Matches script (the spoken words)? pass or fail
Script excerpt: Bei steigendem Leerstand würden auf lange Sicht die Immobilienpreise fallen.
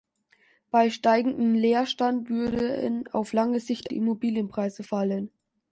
pass